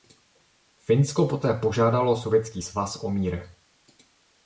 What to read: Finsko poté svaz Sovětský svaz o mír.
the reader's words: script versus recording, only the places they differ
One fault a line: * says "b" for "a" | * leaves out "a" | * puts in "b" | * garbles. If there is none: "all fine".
* says "požádalo" for "svaz"